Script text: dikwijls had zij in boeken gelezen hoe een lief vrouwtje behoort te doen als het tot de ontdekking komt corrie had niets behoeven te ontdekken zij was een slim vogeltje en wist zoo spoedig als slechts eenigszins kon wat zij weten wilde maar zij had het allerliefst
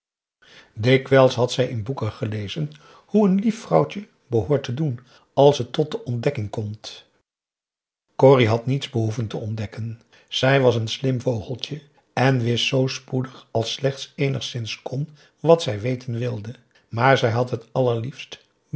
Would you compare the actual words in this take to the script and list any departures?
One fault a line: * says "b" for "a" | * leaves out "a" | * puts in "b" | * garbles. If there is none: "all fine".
all fine